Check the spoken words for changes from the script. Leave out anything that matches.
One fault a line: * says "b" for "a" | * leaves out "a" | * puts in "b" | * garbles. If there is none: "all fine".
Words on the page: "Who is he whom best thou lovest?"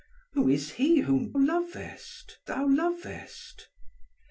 * says "lovest" for "best"